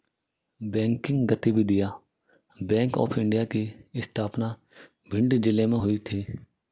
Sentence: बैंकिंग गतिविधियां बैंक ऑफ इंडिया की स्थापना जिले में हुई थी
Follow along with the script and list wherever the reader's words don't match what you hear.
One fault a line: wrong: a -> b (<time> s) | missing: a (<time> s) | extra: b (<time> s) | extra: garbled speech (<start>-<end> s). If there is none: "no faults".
extra: भिंड (5.1 s)